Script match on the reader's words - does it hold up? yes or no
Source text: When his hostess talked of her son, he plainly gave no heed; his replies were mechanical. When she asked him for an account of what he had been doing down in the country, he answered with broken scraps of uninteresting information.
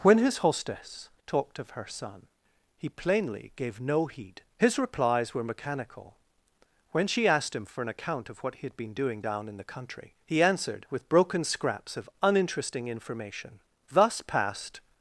no